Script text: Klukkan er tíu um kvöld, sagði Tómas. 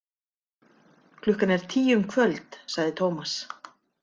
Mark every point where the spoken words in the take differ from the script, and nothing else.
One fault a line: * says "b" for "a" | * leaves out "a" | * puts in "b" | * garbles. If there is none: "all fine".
all fine